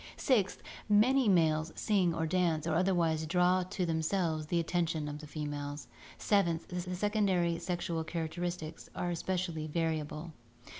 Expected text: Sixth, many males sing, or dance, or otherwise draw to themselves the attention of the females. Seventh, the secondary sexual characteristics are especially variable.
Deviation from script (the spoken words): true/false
true